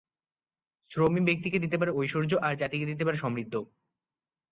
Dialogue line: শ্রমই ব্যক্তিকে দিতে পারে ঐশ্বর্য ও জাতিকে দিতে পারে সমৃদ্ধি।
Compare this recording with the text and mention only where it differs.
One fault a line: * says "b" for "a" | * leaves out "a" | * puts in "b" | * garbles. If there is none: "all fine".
* says "আর" for "ও"